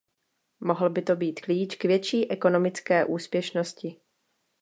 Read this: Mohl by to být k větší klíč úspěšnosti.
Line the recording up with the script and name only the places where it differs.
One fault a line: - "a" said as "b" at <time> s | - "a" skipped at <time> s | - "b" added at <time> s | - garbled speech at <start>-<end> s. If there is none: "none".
- "klíč" added at 1.4 s
- "klíč" said as "ekonomické" at 2.3 s